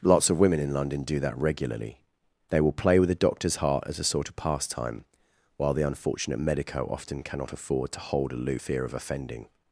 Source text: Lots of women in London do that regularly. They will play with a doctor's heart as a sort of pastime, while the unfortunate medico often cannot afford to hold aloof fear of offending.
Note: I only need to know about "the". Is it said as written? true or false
true